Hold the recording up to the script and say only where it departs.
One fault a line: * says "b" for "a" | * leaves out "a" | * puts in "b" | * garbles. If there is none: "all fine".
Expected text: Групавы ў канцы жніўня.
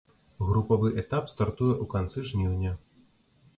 * puts in "этап стартуе"